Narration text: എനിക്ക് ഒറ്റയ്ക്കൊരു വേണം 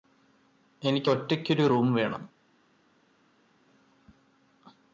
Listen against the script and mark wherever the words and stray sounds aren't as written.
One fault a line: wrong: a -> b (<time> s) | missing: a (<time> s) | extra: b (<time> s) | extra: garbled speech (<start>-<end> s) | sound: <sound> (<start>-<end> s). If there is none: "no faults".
extra: റൂം (1.6 s)